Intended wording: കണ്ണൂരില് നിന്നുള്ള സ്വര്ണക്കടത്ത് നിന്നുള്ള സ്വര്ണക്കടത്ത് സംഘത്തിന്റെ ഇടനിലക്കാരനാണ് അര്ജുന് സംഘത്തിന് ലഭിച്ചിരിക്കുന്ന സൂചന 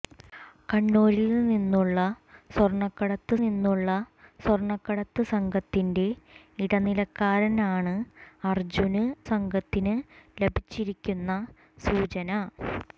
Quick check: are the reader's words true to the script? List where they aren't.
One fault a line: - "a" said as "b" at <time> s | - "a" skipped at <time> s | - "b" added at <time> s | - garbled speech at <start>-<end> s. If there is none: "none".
none